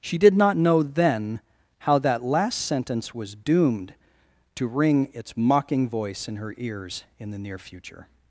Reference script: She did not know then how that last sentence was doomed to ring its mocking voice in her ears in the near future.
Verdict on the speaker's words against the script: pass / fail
pass